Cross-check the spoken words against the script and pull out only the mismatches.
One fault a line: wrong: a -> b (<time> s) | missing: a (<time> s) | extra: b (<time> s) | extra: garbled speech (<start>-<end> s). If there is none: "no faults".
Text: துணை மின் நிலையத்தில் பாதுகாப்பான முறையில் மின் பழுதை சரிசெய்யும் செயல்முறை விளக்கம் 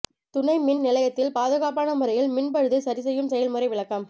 no faults